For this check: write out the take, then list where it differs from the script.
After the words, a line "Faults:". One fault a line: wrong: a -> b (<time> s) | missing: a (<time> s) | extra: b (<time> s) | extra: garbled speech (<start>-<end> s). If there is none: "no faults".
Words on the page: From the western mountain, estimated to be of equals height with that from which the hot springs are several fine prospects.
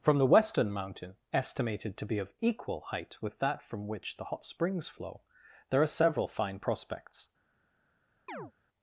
From the western mountain, estimated to be of equal height with that from which the hot springs flow, there are several fine prospects.
Faults:
wrong: equals -> equal (2.4 s)
extra: flow there (4.9 s)